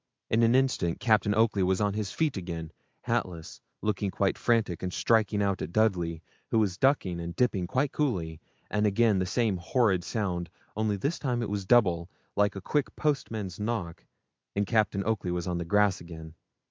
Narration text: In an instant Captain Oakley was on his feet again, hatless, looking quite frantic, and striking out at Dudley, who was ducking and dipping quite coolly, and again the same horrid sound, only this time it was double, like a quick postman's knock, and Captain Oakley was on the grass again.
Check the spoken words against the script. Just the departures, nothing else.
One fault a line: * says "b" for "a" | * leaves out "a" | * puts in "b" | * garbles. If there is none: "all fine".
all fine